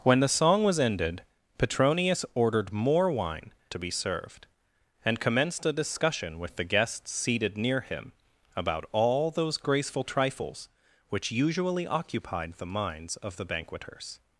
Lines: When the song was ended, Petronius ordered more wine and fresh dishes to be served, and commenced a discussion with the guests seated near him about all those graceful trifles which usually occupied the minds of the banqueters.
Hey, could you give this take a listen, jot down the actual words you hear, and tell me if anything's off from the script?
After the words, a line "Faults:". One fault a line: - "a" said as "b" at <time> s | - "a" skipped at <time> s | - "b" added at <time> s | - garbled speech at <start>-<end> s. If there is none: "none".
When the song was ended, Petronius ordered more wine to be served, and commenced a discussion with the guests seated near him about all those graceful trifles which usually occupied the minds of the banqueters.
Faults:
- "and fresh dishes" skipped at 3.5 s